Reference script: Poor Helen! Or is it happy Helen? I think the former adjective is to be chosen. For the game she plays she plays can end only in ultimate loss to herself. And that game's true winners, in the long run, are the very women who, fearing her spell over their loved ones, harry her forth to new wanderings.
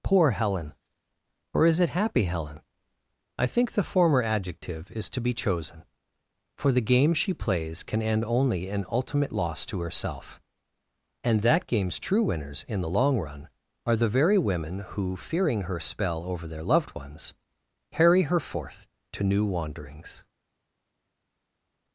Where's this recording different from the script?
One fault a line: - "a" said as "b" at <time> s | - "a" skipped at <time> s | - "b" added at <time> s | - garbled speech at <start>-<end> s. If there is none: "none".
- "she plays" skipped at 7.8 s